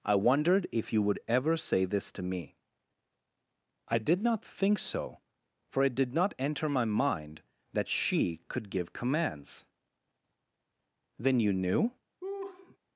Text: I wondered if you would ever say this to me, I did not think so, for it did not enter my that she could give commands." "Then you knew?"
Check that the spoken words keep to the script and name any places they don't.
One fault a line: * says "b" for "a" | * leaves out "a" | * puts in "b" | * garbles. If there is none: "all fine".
* puts in "mind"